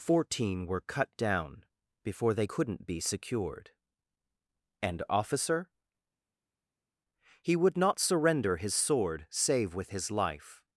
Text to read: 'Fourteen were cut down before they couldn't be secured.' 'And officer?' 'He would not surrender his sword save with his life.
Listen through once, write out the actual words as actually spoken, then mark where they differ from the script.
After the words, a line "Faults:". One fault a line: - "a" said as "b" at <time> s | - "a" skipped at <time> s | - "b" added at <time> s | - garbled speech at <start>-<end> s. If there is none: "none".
'Fourteen were cut down before they couldn't be secured.' 'And officer?' 'He would not surrender his sword save with his life.
Faults:
none